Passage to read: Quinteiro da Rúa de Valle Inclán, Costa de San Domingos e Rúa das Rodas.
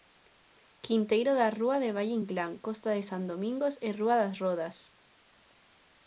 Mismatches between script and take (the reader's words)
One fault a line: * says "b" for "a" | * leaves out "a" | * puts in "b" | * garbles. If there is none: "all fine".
all fine